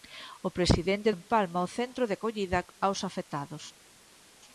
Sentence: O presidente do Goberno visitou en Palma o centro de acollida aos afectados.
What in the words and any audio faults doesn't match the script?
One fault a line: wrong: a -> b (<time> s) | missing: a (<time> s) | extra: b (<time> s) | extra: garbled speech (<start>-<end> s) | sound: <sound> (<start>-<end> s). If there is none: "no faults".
missing: do Goberno visitou (1.1 s)